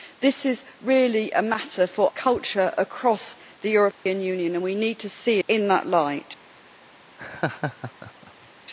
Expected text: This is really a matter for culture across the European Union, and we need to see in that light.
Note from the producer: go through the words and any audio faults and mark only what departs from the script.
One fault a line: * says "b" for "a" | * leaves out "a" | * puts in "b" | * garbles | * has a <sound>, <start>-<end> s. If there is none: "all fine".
* has a dropout, 3.9-4.1 s
* has a laugh, 7.2-8.5 s